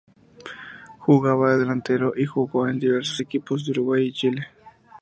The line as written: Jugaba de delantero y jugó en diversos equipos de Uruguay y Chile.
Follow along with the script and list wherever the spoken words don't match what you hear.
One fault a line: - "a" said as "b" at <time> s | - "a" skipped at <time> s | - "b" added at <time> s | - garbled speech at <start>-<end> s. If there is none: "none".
none